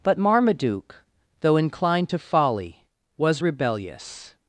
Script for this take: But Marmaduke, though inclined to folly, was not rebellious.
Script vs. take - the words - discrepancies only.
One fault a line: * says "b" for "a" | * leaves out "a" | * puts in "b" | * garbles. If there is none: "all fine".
* leaves out "not"